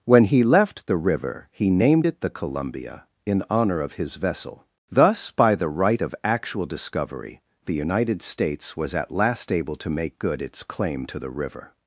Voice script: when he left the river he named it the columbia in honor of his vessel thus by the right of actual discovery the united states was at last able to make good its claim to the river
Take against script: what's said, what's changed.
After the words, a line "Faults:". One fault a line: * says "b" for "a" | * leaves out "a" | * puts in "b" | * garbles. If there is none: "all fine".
when he left the river he named it the columbia in honor of his vessel thus by the right of actual discovery the united states was at last able to make good its claim to the river
Faults:
all fine